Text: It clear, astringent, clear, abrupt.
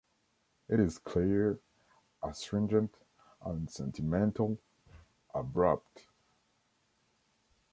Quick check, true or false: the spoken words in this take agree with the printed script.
false